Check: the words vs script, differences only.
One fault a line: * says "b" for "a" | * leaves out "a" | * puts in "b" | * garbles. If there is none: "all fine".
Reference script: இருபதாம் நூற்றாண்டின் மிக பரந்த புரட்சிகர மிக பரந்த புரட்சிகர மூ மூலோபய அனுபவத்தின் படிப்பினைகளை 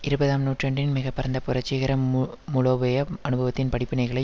* leaves out "மிக பரந்த புரட்சிகர"